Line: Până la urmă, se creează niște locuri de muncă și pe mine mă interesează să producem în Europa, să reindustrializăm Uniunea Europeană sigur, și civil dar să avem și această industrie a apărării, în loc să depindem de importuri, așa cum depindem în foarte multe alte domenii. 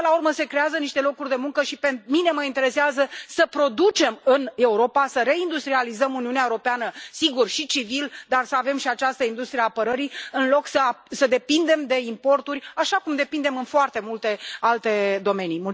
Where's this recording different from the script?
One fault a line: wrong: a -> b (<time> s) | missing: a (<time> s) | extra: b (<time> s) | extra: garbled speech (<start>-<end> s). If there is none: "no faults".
no faults